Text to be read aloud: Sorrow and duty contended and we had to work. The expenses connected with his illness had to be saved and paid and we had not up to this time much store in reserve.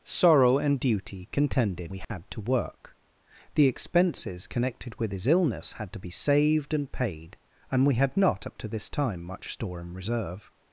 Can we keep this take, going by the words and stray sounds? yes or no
no